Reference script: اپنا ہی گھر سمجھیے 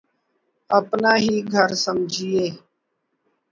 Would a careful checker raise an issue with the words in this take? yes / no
no